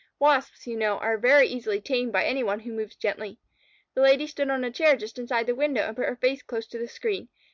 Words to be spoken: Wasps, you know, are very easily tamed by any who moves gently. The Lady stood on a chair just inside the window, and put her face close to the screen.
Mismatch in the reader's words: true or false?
true